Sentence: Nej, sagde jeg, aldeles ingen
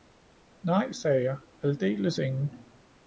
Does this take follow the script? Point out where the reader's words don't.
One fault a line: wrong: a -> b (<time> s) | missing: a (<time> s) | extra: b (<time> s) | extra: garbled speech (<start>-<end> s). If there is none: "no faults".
no faults